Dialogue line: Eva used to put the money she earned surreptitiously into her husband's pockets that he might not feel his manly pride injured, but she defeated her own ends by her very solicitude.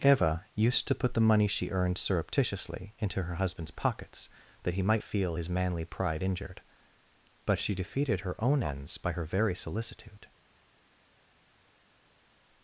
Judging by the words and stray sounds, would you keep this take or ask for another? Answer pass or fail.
fail